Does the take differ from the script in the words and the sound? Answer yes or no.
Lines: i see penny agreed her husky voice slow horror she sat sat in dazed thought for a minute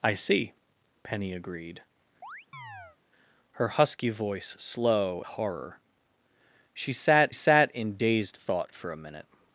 yes